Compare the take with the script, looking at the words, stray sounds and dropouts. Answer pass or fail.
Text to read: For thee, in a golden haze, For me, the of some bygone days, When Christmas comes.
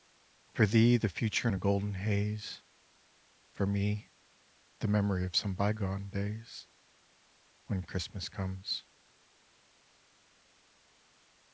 fail